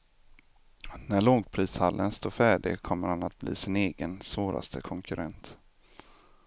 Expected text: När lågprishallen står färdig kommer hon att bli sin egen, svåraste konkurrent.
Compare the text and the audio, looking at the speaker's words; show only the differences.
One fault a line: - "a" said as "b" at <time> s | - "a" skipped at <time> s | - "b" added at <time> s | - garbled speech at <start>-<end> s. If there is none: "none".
- "hon" said as "han" at 3.1 s